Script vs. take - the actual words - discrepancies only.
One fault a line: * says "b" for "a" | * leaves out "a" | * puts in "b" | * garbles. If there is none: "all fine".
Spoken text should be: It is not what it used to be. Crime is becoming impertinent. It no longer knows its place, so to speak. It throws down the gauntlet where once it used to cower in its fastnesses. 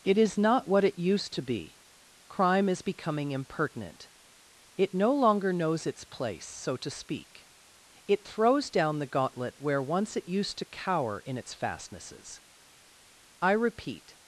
* puts in "I repeat"